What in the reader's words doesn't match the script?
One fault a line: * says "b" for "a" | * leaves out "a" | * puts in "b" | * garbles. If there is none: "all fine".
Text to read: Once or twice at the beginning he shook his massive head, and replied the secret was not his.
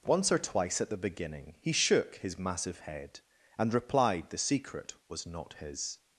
all fine